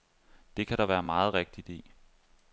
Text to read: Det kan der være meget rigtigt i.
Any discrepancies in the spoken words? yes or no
no